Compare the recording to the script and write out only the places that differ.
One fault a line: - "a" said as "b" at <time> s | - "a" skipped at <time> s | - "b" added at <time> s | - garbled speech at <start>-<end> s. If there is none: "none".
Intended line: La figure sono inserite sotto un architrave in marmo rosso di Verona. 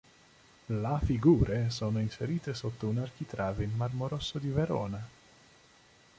none